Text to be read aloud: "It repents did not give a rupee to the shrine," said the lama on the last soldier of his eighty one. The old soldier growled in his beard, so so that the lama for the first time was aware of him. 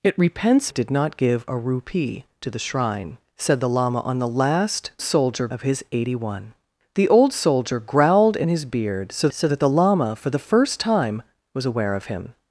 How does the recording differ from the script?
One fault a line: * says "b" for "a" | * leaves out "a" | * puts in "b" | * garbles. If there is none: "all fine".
all fine